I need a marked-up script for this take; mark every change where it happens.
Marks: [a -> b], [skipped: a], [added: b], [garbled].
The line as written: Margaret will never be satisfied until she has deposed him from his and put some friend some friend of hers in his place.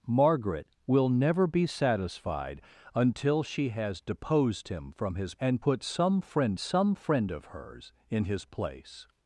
Margaret will never be satisfied until she has deposed him from his and put some friend some friend of hers in his place.